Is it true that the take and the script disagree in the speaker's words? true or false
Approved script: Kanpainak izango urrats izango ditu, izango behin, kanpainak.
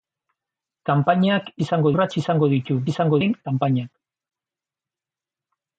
false